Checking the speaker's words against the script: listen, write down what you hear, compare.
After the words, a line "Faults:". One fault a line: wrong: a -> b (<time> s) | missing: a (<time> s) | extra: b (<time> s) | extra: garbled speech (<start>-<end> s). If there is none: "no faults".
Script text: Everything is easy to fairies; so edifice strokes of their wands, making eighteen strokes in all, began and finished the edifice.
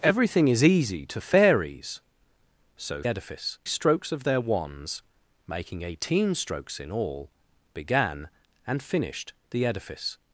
Everything is easy to fairies; so edifice strokes of their wands, making eighteen strokes in all, began and finished the edifice.
Faults:
no faults